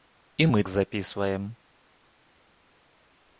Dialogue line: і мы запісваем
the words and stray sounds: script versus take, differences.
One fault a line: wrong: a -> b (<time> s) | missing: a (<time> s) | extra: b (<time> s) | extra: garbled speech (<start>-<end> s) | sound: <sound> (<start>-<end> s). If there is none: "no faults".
no faults